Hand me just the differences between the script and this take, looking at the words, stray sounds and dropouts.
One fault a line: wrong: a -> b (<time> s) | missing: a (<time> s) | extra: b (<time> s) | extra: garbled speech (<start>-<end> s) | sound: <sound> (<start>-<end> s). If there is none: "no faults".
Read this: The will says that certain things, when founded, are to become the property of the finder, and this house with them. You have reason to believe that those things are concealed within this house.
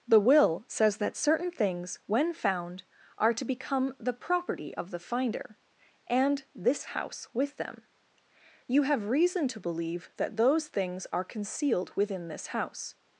wrong: founded -> found (2.3 s)